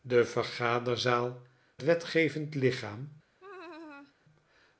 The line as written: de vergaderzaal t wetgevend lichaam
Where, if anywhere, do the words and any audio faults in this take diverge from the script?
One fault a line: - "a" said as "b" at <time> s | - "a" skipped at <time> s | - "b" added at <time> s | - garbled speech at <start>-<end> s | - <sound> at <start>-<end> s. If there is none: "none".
- laugh at 3.4-4.1 s